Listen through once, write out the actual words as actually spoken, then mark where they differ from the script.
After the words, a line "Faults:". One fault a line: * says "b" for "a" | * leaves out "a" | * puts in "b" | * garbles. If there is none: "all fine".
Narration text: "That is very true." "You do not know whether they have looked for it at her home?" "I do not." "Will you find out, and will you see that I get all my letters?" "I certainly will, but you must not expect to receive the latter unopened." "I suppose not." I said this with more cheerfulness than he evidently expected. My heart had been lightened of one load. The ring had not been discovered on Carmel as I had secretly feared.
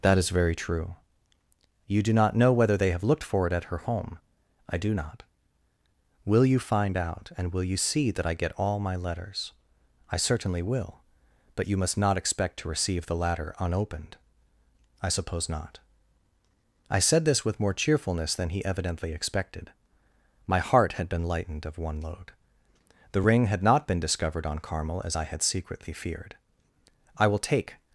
"That is very true." "You do not know whether they have looked for it at her home?" "I do not." "Will you find out, and will you see that I get all my letters?" "I certainly will, but you must not expect to receive the latter unopened." "I suppose not." I said this with more cheerfulness than he evidently expected. My heart had been lightened of one load. The ring had not been discovered on Carmel as I had secretly feared. "I will take
Faults:
* puts in "I will take"